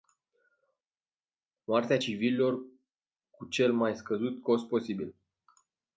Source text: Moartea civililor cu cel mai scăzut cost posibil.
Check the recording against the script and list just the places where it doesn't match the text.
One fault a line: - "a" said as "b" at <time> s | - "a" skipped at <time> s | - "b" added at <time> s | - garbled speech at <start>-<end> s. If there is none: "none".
none